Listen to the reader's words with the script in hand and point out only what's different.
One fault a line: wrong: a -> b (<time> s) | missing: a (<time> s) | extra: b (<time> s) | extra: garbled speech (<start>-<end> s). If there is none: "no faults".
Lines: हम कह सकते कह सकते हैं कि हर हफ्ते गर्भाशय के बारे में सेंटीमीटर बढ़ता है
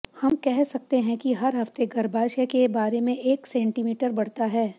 missing: कह सकते (1.0 s)
extra: एक (3.2 s)